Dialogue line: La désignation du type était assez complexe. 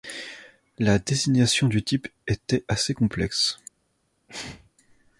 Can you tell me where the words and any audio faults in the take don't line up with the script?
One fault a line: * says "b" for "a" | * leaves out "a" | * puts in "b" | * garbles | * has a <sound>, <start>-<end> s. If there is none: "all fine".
* has a sneeze, 4.3-4.7 s